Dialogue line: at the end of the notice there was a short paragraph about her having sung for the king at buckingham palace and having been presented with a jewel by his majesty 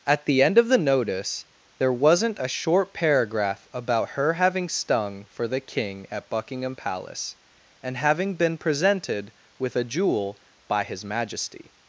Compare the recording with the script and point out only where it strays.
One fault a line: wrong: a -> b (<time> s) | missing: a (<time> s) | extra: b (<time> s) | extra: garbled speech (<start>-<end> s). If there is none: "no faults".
wrong: was -> wasn't (1.9 s)
wrong: sung -> stung (4.7 s)